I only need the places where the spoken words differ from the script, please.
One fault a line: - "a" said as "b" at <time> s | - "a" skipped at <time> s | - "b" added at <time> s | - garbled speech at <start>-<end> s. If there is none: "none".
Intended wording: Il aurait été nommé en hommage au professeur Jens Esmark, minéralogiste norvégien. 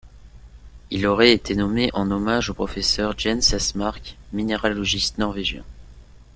none